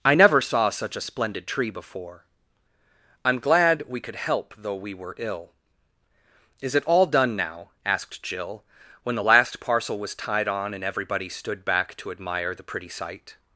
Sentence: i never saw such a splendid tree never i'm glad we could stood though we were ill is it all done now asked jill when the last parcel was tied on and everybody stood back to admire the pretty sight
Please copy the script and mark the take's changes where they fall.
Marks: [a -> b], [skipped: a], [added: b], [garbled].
i never saw such a splendid tree [never -> before] i'm glad we could [stood -> help] though we were ill is it all done now asked jill when the last parcel was tied on and everybody stood back to admire the pretty sight